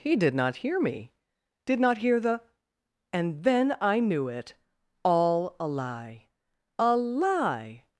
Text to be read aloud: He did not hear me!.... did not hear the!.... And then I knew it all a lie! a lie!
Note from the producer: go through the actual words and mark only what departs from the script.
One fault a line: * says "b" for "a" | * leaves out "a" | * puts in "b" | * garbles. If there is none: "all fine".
all fine